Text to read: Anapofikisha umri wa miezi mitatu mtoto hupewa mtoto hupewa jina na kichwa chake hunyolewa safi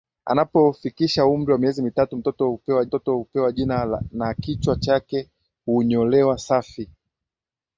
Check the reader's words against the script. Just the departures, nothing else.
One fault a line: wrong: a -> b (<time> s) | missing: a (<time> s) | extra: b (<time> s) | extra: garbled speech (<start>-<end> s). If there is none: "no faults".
no faults